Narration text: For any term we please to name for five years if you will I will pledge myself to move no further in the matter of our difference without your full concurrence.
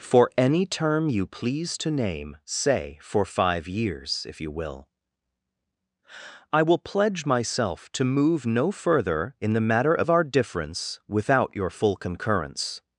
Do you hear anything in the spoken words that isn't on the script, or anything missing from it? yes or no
yes